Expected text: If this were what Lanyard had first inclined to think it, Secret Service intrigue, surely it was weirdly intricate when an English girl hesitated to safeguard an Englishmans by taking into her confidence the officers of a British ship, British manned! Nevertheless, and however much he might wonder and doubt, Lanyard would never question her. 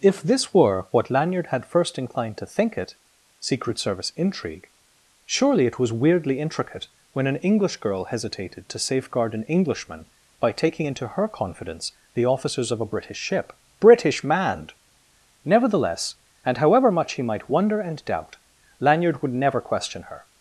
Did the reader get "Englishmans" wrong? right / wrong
wrong